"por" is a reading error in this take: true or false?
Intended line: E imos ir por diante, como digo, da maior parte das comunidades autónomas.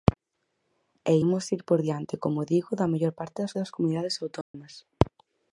false